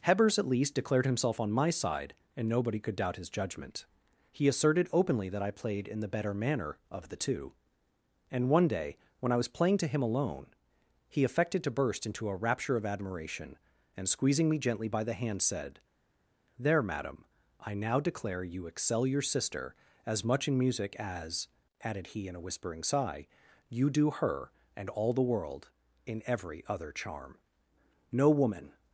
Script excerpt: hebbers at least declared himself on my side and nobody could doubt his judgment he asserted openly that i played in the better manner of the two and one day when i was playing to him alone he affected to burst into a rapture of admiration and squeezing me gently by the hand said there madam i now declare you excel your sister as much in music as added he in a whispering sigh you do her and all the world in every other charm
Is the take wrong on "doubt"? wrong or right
right